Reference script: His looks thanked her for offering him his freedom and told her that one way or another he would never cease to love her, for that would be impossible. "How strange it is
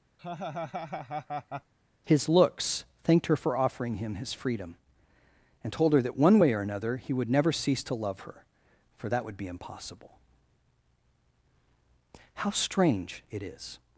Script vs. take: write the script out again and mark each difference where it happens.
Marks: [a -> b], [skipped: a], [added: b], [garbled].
His looks thanked her for offering him his freedom and told her that one way or another he would never cease to love her, for that would be impossible. "How strange it is